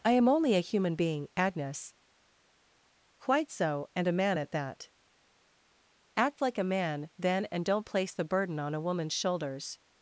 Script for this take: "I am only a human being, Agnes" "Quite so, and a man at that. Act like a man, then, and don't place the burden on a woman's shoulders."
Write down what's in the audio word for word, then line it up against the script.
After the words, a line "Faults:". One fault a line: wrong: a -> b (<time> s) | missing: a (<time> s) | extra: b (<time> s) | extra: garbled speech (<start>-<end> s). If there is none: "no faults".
"I am only a human being, Agnes" "Quite so, and a man at that. Act like a man, then, and don't place the burden on a woman's shoulders."
Faults:
no faults